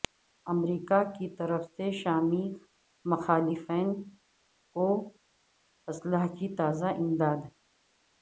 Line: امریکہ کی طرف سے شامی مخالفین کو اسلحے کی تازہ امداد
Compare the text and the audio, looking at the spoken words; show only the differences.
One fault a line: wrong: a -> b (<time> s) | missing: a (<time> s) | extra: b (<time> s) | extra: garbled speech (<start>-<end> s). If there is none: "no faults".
no faults